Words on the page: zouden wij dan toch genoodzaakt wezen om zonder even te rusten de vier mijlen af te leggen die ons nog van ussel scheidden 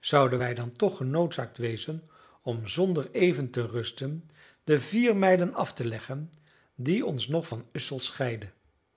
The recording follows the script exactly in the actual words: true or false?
true